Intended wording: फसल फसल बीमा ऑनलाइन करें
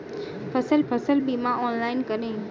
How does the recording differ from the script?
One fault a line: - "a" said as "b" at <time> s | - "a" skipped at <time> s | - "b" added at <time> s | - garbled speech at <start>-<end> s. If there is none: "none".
none